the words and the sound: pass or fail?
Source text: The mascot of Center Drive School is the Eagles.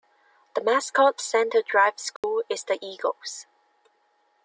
fail